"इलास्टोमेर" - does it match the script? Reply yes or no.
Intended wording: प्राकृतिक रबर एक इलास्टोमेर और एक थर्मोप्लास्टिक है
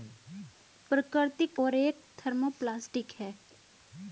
no